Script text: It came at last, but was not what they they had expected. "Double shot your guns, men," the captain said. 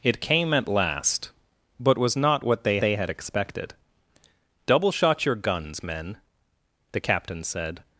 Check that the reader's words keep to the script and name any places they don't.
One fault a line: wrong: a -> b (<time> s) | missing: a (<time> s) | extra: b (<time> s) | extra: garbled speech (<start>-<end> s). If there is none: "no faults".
no faults